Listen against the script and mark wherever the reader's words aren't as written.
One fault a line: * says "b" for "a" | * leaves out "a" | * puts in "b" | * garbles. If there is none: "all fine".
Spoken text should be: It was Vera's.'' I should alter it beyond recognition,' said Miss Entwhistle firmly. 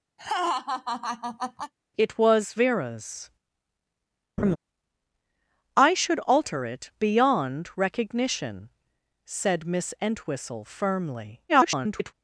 * garbles